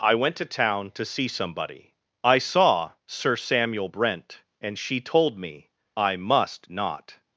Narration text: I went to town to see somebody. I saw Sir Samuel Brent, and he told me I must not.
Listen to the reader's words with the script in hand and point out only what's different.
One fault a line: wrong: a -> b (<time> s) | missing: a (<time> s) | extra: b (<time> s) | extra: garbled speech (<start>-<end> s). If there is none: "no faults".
wrong: he -> she (4.8 s)